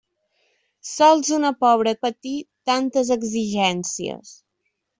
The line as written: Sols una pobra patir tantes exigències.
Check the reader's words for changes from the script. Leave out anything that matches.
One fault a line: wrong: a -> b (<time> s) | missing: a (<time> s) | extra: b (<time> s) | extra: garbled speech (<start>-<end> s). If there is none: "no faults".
no faults